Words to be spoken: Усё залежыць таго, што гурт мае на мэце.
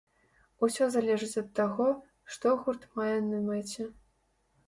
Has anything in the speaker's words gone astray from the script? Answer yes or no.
yes